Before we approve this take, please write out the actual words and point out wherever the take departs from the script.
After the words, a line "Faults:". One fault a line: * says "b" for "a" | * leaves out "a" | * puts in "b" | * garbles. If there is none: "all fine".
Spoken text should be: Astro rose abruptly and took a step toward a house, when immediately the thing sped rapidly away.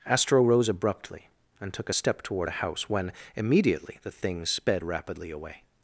Astro rose abruptly and took a step toward a house, when immediately the thing sped rapidly away.
Faults:
all fine